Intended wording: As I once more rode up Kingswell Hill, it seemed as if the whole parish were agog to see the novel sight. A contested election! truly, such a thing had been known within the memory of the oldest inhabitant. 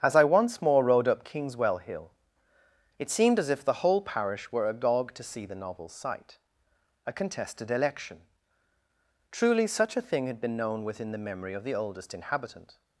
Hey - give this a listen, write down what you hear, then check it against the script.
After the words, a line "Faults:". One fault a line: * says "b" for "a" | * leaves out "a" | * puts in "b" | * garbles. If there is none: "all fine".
As I once more rode up Kingswell Hill, it seemed as if the whole parish were agog to see the novel sight. A contested election! truly, such a thing had been known within the memory of the oldest inhabitant.
Faults:
all fine